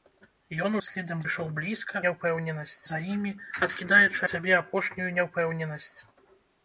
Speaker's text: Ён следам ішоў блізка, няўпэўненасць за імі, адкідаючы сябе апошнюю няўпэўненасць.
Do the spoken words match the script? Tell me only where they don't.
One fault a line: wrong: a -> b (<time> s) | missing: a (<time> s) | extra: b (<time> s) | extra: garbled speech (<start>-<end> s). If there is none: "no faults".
no faults